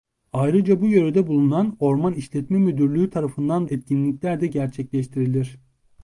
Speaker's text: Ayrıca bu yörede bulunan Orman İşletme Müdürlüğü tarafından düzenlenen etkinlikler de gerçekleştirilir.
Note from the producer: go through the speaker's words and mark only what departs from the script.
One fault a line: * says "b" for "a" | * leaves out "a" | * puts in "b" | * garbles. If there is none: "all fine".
* leaves out "düzenlenen"